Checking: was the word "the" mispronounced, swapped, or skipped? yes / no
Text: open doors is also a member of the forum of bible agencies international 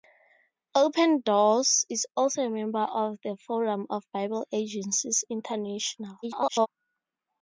no